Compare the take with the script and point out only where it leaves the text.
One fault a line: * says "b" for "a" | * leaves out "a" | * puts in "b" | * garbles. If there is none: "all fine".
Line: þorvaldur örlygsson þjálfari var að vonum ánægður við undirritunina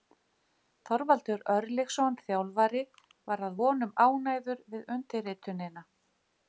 all fine